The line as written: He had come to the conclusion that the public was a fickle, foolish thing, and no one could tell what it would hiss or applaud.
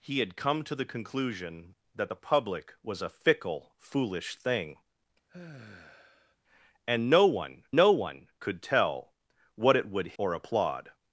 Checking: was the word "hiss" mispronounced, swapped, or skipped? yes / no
yes